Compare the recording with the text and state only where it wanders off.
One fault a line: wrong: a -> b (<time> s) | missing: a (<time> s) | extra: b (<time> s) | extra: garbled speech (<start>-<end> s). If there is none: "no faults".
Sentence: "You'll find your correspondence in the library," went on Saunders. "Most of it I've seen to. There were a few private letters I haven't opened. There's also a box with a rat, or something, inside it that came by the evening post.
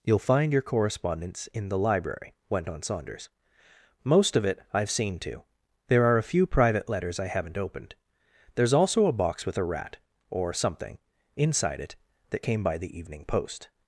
wrong: were -> are (6.0 s)